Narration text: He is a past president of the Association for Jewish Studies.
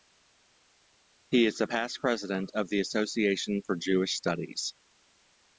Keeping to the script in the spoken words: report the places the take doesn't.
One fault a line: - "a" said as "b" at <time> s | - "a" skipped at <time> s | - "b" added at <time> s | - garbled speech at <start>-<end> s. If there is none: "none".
none